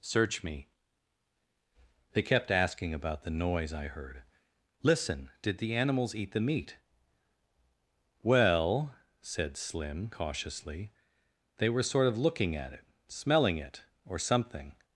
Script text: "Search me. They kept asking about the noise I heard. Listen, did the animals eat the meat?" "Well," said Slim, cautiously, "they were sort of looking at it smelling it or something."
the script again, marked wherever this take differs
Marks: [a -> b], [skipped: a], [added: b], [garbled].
"Search me. They kept asking about the noise I heard. Listen, did the animals eat the meat?" "Well," said Slim, cautiously, "they were sort of looking at it smelling it or something."